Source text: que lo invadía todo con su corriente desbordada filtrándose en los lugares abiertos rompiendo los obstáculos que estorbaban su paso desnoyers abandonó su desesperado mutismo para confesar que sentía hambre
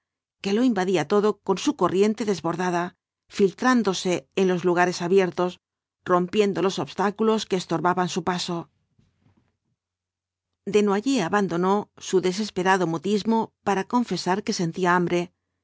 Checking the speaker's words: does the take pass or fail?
pass